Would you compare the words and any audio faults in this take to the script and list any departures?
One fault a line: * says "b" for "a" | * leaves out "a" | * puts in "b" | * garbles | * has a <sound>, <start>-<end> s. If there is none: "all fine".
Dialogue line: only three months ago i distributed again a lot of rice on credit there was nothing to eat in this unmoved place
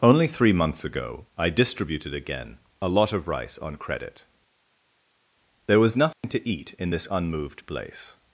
* has a dropout, 6.1-6.2 s